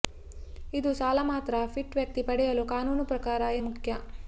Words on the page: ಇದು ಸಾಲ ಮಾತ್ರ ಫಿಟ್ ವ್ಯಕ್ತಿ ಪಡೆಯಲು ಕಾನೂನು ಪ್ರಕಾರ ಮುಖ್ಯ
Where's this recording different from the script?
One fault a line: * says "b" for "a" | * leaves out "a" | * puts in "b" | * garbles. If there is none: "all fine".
all fine